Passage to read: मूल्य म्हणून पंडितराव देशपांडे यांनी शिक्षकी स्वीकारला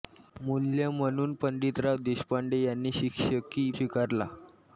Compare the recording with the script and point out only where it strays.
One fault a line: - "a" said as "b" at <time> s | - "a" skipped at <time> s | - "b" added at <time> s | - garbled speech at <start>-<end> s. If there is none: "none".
none